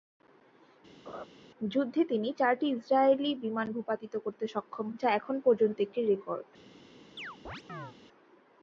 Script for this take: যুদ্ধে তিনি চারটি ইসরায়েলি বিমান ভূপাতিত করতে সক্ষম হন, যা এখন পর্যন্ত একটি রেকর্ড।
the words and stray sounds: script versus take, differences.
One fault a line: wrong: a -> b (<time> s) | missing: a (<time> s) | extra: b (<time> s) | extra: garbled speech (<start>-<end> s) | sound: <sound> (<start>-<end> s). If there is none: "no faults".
sound: laugh (1.1-1.3 s)
missing: হন (4.9 s)
sound: chirp (7.2-7.9 s)